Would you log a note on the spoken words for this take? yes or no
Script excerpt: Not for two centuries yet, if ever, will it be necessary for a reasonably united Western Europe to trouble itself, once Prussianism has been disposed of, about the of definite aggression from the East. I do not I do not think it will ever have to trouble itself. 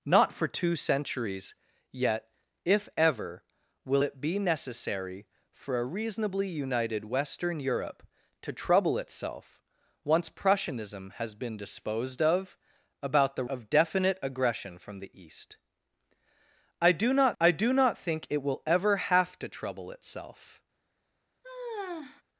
no